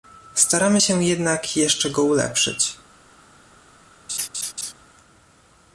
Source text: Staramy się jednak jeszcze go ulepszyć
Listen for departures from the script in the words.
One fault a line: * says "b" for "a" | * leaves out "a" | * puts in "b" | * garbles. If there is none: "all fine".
all fine